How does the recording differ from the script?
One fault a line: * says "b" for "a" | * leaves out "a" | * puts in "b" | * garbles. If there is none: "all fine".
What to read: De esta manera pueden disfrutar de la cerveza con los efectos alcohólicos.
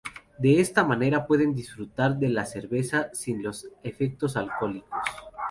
* says "sin" for "con"